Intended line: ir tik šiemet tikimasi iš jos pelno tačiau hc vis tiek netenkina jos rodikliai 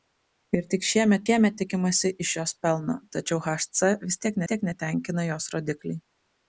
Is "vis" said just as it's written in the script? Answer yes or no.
yes